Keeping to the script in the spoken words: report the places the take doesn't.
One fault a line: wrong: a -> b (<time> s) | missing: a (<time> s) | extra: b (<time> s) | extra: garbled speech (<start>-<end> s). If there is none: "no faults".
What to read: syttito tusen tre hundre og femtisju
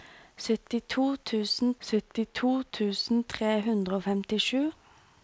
extra: syttito tusen (1.9 s)